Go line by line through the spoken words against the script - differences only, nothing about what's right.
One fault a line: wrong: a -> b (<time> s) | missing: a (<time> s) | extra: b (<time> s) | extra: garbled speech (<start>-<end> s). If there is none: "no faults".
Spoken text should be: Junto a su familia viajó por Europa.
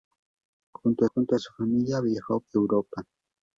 extra: junto (1.1 s)
missing: por (2.4 s)